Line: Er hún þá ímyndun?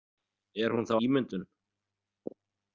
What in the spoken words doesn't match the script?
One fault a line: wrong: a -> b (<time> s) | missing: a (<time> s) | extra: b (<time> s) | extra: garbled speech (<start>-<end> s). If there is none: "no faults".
no faults